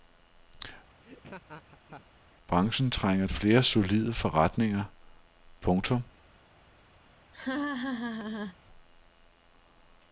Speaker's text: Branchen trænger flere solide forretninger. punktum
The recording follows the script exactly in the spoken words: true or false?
true